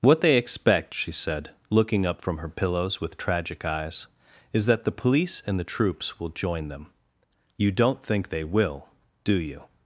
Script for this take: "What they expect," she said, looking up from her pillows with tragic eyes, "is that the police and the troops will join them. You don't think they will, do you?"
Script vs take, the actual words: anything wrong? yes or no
no